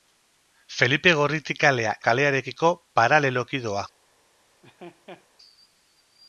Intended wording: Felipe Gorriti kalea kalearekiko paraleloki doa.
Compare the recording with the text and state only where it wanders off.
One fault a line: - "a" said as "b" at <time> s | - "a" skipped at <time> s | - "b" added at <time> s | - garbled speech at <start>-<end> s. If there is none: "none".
none